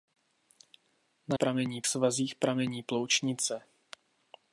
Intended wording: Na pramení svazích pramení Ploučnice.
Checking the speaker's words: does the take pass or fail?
pass